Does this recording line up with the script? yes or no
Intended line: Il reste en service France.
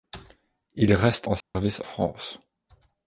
yes